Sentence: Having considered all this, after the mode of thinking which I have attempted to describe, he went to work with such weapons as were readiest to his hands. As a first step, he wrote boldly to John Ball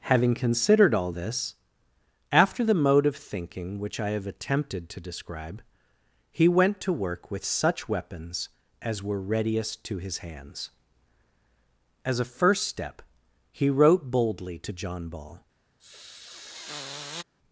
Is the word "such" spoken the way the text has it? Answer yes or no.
yes